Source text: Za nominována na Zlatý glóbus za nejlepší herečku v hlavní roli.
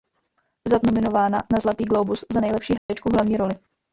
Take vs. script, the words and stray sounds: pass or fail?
fail